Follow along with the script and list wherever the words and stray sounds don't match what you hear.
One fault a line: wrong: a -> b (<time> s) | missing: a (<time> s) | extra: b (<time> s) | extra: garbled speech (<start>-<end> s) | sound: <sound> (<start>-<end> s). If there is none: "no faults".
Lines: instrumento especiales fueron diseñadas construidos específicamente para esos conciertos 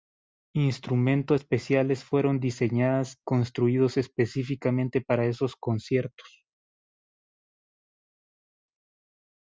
no faults